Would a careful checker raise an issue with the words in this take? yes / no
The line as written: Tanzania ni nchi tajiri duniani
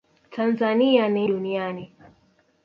yes